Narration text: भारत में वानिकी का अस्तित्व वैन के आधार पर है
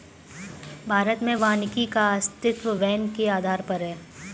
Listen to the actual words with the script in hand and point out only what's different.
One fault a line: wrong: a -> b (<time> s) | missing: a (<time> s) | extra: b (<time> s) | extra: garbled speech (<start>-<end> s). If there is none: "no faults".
no faults